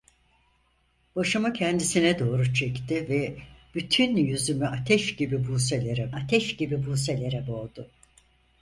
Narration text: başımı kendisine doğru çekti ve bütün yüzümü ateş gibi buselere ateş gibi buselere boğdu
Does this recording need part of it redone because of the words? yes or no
no